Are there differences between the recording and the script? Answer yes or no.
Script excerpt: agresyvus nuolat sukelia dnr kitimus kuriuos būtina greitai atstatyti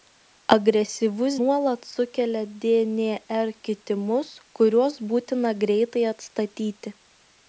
no